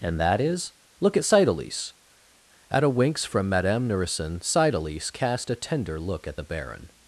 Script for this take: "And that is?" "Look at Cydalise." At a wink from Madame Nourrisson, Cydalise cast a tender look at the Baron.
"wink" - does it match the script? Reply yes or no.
no